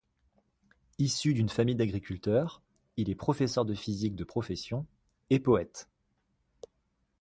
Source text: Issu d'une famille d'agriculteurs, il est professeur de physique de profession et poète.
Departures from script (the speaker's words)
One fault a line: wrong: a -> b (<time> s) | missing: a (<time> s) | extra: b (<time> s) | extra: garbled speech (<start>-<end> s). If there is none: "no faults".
no faults